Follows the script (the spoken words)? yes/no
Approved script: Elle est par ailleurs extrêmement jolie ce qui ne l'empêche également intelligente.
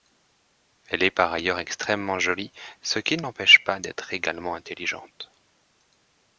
no